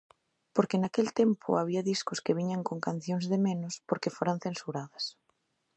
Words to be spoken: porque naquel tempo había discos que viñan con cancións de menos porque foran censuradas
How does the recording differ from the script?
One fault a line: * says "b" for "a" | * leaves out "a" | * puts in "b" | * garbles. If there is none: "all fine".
all fine